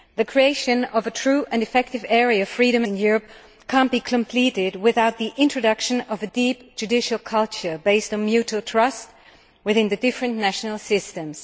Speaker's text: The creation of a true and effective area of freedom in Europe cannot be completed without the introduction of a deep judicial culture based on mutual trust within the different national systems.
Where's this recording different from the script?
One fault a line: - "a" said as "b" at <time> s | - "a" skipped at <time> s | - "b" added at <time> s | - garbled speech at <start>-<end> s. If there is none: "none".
none